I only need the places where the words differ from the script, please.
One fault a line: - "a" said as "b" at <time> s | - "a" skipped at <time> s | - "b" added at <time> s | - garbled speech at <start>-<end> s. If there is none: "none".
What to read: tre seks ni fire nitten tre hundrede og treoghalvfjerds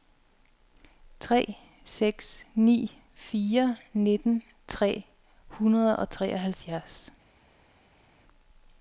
none